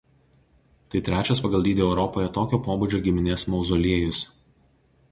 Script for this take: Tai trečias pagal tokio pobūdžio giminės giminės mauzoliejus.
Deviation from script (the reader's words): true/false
true